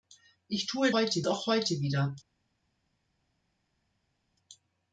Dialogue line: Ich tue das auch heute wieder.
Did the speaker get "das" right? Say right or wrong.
wrong